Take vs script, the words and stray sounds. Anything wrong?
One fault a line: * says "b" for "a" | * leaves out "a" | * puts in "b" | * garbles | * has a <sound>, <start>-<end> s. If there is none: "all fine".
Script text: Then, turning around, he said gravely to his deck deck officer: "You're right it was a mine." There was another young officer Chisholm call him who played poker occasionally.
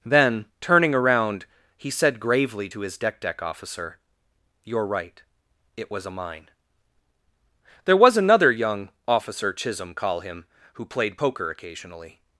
all fine